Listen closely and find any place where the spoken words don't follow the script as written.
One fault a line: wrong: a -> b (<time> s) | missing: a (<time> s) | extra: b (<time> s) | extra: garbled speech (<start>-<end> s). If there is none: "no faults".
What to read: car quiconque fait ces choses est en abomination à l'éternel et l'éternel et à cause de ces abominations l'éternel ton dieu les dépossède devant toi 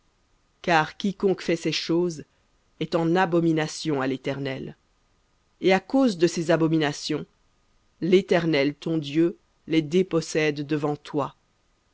missing: l'éternel et (5.7 s)